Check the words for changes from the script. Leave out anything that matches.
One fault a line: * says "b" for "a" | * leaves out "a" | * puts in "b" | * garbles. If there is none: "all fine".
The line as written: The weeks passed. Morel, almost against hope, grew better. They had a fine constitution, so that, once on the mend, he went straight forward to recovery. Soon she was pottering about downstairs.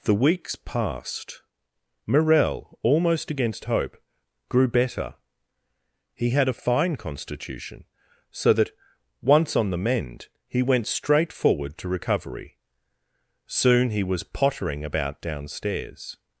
* says "He" for "They"
* says "he" for "she"